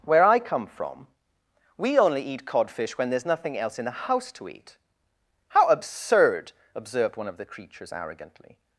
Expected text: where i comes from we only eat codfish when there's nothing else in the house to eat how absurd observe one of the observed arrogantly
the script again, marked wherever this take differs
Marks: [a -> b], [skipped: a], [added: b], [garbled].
where i [comes -> come] from we only eat codfish when there's nothing else in the house to eat how absurd [observe -> observed] one of the [observed -> creatures] arrogantly